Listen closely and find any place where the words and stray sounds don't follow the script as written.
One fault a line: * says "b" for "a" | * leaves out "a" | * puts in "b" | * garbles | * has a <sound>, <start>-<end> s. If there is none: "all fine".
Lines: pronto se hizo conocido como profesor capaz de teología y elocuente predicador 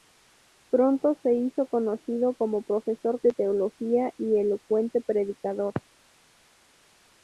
* leaves out "capaz"